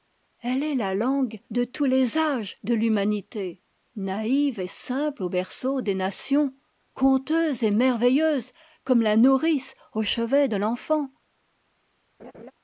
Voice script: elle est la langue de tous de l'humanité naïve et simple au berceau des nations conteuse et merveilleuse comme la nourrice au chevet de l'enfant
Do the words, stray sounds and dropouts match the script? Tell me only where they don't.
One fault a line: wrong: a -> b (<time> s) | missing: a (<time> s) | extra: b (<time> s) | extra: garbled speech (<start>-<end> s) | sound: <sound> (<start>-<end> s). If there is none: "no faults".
extra: les âges (1.9 s)
sound: laugh (12.2-12.5 s)